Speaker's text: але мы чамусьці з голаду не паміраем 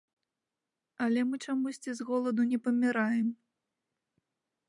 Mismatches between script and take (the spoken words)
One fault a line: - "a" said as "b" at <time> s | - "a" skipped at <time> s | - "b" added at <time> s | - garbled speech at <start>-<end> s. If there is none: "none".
none